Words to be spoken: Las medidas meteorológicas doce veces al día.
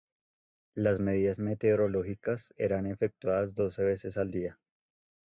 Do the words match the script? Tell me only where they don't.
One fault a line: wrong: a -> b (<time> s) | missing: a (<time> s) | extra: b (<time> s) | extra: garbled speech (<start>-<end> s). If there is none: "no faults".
extra: eran efectuadas (2.5 s)